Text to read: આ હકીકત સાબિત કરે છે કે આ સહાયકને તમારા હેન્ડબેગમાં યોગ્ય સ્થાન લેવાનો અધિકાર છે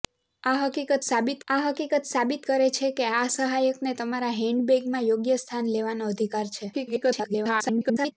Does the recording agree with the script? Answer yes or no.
no